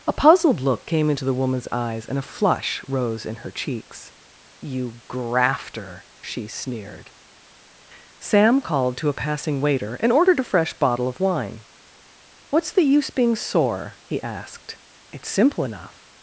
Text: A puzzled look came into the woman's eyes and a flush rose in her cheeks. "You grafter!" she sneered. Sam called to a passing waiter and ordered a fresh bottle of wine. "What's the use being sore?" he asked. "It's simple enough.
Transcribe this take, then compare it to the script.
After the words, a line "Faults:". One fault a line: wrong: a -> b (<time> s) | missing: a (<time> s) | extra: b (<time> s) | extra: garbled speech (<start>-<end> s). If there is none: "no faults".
A puzzled look came into the woman's eyes and a flush rose in her cheeks. "You grafter!" she sneered. Sam called to a passing waiter and ordered a fresh bottle of wine. "What's the use being sore?" he asked. "It's simple enough.
Faults:
no faults